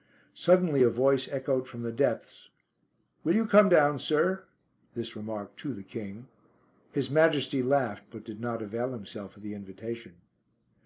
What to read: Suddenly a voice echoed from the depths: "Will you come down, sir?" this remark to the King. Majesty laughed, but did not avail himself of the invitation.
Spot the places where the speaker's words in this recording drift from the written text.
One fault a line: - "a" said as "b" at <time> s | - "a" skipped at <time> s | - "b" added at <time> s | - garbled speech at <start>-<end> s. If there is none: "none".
- "His" added at 6.9 s